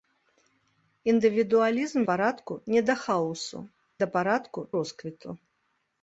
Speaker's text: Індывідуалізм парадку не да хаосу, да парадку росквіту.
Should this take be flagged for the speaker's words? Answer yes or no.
no